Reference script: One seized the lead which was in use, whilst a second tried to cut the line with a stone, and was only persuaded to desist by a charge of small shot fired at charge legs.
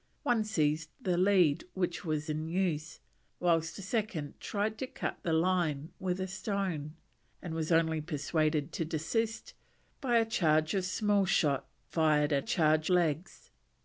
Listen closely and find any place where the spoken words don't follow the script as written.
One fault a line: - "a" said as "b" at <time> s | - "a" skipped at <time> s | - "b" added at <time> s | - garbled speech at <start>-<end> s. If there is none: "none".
none